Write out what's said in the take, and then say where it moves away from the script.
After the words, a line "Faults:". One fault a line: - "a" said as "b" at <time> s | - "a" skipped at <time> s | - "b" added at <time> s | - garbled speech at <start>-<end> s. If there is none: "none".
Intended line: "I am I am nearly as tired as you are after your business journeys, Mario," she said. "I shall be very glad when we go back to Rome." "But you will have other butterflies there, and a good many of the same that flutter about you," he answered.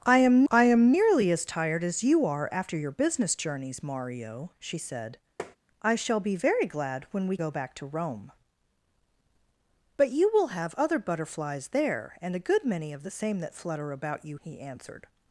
"I am I am nearly as tired as you are after your business journeys, Mario," she said. "I shall be very glad when we go back to Rome." "But you will have other butterflies there, and a good many of the same that flutter about you," he answered.
Faults:
none